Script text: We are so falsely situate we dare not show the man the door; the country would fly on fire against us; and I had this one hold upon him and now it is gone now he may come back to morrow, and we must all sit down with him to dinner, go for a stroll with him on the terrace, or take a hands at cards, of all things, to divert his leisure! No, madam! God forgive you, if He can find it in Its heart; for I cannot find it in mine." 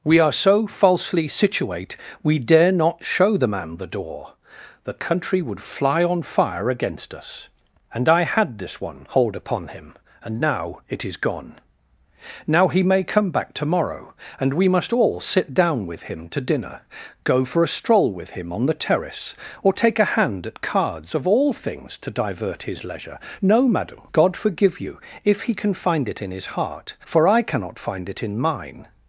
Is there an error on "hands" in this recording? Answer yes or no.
yes